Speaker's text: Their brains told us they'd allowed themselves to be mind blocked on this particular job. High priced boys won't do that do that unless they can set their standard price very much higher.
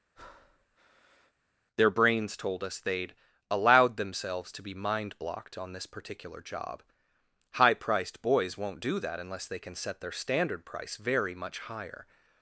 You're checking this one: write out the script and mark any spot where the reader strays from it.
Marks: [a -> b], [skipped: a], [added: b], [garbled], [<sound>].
[breath] Their brains told us they'd allowed themselves to be mind blocked on this particular job. High priced boys won't do that [skipped: do that] unless they can set their standard price very much higher.